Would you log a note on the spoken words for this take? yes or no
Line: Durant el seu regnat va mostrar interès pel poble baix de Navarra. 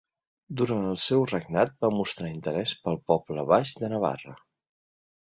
no